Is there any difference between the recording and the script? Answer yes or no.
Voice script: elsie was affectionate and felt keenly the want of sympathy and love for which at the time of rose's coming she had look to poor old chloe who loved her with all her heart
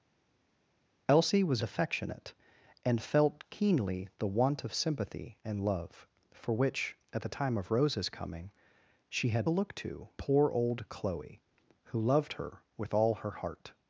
no